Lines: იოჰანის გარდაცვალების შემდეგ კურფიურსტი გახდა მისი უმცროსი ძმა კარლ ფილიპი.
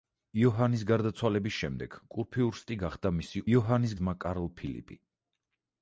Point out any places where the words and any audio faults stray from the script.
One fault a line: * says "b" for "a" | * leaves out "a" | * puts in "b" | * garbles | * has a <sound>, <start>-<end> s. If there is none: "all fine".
* says "იოჰანის" for "უმცროსი"